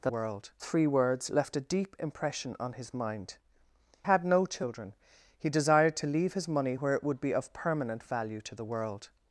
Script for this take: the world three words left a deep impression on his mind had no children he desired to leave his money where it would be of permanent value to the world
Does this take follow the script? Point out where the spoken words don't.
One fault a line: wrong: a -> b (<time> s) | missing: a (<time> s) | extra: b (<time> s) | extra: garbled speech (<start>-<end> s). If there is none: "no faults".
no faults